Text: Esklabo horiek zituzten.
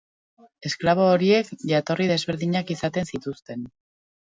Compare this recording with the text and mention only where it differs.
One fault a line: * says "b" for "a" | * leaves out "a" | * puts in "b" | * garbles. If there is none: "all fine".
* puts in "jatorri desberdinak izaten"